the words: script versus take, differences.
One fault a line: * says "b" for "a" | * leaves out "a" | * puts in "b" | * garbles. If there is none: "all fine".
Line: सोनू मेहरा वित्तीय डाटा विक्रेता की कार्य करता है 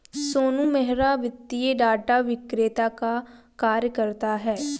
* says "का" for "की"